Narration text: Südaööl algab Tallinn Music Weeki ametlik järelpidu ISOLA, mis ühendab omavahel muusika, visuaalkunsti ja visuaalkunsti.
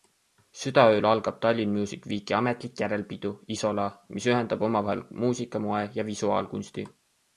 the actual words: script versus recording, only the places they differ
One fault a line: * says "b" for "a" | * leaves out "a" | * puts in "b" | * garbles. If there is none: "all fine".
* says "moe" for "visuaalkunsti"